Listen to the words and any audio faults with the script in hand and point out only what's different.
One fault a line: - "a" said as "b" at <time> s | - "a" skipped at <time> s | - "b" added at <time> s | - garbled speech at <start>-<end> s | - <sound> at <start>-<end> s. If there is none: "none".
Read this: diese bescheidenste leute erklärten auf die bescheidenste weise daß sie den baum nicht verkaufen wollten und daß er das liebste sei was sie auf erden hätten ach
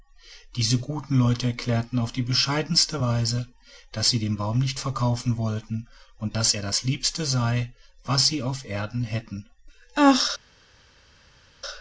- "bescheidenste" said as "guten" at 0.8 s